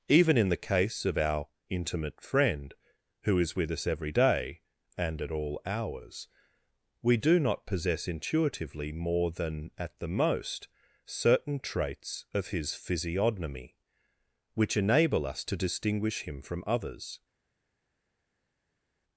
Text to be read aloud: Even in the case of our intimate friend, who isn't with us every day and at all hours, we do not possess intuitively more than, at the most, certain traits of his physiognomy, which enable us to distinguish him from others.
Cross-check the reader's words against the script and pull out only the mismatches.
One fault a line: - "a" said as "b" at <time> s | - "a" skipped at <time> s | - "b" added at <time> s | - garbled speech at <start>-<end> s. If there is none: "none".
- "isn't" said as "is" at 3.4 s